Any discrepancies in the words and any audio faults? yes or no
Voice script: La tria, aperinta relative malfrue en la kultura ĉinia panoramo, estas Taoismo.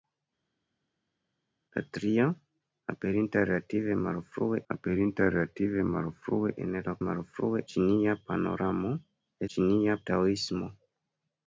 yes